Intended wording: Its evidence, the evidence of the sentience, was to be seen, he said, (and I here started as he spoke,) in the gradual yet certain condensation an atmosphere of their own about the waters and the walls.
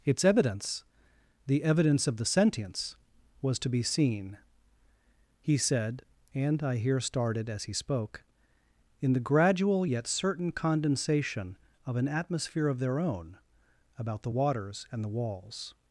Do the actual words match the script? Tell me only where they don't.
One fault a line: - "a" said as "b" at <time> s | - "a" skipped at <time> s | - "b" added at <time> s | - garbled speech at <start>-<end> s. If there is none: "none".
- "of" added at 11.8 s